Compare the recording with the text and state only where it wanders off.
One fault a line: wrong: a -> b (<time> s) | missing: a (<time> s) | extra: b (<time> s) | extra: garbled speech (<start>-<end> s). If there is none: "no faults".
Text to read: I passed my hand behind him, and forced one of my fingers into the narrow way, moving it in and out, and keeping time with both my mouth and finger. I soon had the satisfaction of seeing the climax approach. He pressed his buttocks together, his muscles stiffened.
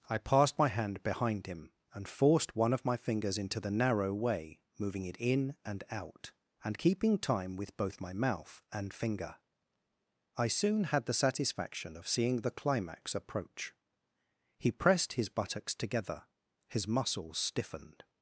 no faults